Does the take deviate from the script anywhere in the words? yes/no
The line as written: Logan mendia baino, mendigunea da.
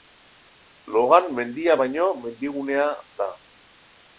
no